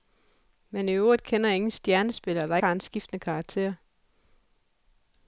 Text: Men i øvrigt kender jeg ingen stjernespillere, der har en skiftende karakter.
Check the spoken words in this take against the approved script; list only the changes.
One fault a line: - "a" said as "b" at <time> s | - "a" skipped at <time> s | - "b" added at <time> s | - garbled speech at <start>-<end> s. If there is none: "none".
none